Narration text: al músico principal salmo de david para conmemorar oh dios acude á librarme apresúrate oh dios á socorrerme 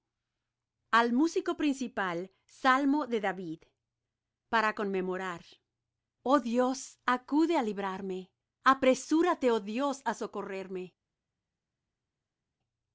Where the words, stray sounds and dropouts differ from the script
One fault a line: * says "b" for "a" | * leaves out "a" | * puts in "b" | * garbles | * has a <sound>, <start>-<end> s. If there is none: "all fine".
all fine